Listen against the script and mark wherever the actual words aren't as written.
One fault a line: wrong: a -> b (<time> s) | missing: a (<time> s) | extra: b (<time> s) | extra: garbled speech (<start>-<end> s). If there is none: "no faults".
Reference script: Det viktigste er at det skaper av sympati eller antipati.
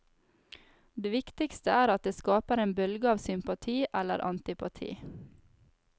extra: en bølge (2.6 s)